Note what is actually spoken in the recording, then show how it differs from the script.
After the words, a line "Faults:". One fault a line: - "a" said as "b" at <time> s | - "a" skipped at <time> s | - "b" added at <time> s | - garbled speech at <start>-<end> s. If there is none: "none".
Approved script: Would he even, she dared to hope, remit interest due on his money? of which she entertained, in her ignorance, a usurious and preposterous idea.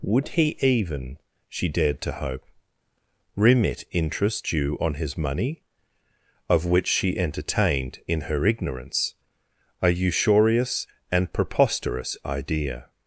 Would he even, she dared to hope, remit interest due on his money? of which she entertained, in her ignorance, a usurious and preposterous idea.
Faults:
none